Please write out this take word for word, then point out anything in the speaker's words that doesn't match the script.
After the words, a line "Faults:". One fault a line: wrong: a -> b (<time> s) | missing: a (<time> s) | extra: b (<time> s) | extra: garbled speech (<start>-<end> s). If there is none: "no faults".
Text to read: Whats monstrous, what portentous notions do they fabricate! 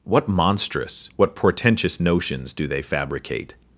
What monstrous, what portentous notions do they fabricate!
Faults:
wrong: Whats -> What (0.0 s)